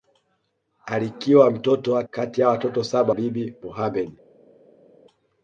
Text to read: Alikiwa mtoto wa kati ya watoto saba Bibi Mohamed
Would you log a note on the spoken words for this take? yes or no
no